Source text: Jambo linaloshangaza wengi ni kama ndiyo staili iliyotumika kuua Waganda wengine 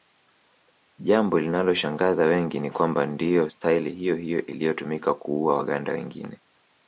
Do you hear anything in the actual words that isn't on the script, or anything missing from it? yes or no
yes